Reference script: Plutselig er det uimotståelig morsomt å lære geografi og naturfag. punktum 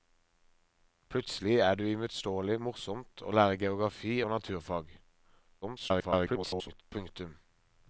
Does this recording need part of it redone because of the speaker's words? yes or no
yes